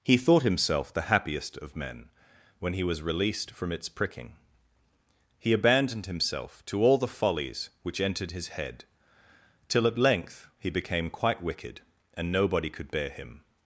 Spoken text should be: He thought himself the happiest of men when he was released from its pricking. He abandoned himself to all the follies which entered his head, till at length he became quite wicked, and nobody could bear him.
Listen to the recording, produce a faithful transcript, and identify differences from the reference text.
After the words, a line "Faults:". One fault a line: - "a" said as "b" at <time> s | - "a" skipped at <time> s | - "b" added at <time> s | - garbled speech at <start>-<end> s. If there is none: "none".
He thought himself the happiest of men when he was released from its pricking. He abandoned himself to all the follies which entered his head, till at length he became quite wicked, and nobody could bear him.
Faults:
none